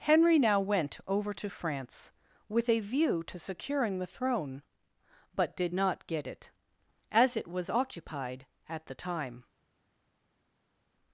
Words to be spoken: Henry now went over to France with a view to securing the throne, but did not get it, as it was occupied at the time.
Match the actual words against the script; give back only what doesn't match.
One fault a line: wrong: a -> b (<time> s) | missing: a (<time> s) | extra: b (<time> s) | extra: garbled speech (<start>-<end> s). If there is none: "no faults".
no faults